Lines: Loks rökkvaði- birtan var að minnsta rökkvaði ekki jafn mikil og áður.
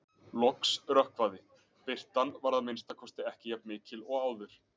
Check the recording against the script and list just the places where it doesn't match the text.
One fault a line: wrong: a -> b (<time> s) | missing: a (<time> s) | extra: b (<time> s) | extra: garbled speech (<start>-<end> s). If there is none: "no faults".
wrong: rökkvaði -> kosti (3.0 s)